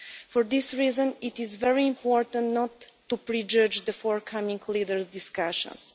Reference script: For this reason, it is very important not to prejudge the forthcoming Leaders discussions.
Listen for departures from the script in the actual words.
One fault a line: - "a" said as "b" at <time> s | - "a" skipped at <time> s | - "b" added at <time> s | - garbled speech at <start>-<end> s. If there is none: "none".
none